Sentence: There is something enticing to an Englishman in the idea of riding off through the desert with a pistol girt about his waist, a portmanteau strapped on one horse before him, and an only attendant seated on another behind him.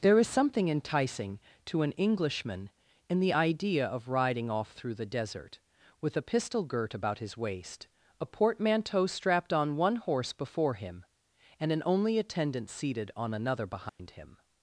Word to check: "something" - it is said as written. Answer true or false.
true